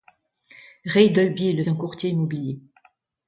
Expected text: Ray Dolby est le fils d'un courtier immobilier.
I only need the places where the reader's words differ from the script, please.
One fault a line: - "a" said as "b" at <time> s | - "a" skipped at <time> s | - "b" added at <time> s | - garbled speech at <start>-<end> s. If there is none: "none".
- "fils" skipped at 1.6 s